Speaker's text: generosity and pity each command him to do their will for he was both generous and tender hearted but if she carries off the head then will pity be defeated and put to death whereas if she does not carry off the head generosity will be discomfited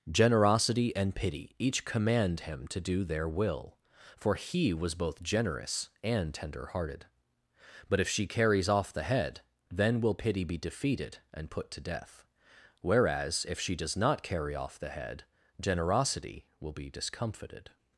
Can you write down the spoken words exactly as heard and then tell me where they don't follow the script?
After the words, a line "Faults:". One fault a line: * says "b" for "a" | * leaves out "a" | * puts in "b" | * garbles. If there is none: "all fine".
generosity and pity each command him to do their will for he was both generous and tender hearted but if she carries off the head then will pity be defeated and put to death whereas if she does not carry off the head generosity will be discomfited
Faults:
all fine